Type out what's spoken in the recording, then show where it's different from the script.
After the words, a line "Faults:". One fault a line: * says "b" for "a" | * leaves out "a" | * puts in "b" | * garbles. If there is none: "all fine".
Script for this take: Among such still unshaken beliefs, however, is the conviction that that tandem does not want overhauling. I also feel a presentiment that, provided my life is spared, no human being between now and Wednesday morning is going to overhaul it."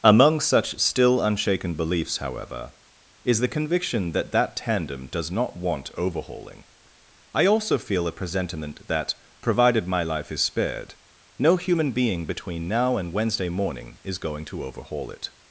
Among such still unshaken beliefs, however, is the conviction that that tandem does not want overhauling. I also feel a presentiment that, provided my life is spared, no human being between now and Wednesday morning is going to overhaul it."
Faults:
all fine